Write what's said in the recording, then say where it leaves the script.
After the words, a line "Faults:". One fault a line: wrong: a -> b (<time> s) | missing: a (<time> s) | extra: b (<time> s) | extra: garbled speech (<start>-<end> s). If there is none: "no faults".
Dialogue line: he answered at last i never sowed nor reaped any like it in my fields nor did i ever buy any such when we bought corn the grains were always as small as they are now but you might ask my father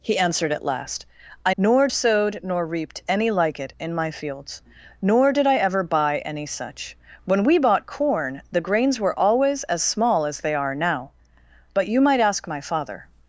he answered at last i nor sowed nor reaped any like it in my fields nor did i ever buy any such when we bought corn the grains were always as small as they are now but you might ask my father
Faults:
wrong: never -> nor (1.6 s)